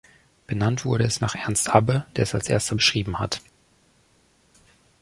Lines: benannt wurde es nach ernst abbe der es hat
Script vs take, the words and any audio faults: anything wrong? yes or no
yes